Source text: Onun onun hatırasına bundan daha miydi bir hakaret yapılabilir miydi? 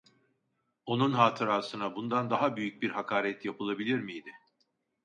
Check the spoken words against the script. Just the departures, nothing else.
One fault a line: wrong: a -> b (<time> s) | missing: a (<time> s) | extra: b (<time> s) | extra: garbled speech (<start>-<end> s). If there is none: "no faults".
missing: onun (1.1 s)
wrong: miydi -> büyük (2.5 s)